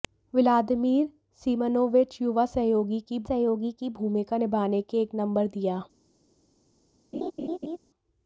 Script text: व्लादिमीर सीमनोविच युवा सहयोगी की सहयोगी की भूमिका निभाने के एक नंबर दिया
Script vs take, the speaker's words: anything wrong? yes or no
no